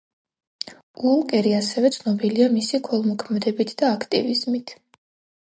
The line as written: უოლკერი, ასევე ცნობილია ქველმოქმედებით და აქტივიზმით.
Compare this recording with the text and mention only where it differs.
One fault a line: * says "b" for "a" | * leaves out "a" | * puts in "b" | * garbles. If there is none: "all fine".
* puts in "მისი"